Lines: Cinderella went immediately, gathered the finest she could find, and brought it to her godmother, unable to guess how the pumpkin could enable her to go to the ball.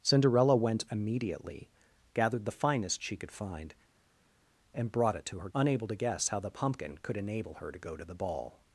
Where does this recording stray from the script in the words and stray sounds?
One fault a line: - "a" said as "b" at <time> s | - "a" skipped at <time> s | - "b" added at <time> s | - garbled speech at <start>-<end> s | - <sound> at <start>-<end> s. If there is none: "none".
- "godmother" skipped at 5.5 s